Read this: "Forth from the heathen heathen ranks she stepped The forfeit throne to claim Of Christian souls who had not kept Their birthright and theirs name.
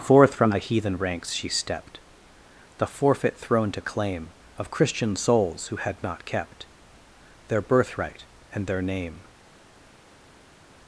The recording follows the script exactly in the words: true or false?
false